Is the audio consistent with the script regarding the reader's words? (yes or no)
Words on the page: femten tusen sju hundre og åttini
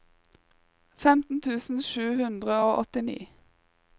yes